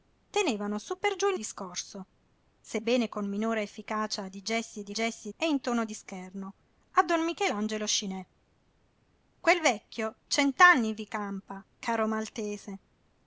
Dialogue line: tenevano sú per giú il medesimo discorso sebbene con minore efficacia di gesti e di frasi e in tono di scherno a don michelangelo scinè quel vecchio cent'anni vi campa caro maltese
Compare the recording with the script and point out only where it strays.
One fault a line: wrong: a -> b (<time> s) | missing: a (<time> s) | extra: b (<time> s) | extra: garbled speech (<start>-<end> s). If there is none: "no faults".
missing: medesimo (1.4 s)
wrong: frasi -> gesti (4.9 s)